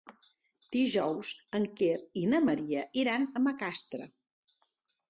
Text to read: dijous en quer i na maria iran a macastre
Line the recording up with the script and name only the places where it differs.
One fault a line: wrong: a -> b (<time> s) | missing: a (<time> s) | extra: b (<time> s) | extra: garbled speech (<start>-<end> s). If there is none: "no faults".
no faults